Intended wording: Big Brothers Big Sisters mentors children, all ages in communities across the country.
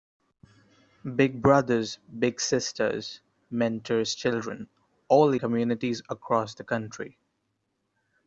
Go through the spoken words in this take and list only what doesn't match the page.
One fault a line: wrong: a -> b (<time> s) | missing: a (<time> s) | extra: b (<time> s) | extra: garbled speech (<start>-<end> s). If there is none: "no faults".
missing: ages in (5.3 s)